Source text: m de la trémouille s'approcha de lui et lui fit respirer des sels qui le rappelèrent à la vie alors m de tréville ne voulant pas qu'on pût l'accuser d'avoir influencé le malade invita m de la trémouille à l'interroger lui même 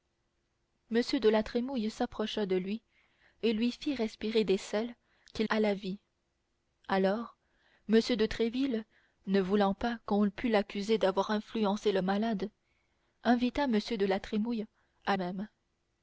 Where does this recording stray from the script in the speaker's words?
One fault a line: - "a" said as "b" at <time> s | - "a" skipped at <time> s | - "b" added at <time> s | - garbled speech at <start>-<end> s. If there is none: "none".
- "le rappelèrent" skipped at 5.4 s
- "l'interroger lui" skipped at 15.2 s